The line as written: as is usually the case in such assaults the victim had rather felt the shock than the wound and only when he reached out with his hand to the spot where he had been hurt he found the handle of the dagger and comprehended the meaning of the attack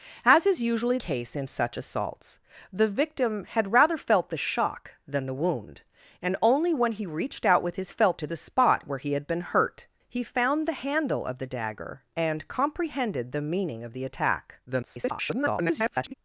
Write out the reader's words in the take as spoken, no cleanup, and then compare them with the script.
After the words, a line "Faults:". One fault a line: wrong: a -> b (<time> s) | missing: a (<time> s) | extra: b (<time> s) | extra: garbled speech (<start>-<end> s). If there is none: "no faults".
as is usually case in such assaults the victim had rather felt the shock than the wound and only when he reached out with his felt to the spot where he had been hurt he found the handle of the dagger and comprehended the meaning of the attack [garbled]
Faults:
missing: the (1.0 s)
wrong: hand -> felt (7.9 s)
extra: garbled speech (14.7-16.1 s)